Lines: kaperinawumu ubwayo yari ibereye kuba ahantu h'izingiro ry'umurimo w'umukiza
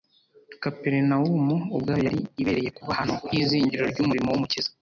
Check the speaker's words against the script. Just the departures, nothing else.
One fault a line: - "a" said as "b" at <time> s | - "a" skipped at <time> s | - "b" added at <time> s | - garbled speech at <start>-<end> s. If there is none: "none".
none